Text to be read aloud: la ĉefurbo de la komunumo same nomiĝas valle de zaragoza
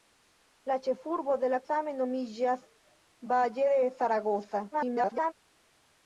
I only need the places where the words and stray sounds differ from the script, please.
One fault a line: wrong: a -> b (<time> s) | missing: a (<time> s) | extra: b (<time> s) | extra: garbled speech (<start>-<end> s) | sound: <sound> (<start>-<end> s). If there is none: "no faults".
missing: komunumo (1.6 s)
extra: garbled speech (4.7-5.3 s)